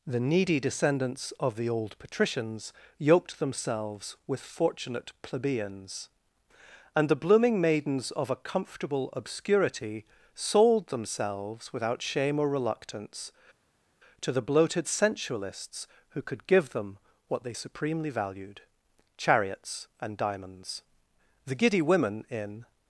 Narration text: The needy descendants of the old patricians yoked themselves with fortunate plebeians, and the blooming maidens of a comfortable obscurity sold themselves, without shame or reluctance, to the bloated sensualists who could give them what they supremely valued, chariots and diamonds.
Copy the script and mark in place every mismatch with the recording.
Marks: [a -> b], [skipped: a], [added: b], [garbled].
The needy descendants of the old patricians yoked themselves with fortunate plebeians, and the blooming maidens of a comfortable obscurity sold themselves, without shame or reluctance, to the bloated sensualists who could give them what they supremely valued, chariots and diamonds. [added: The giddy women in]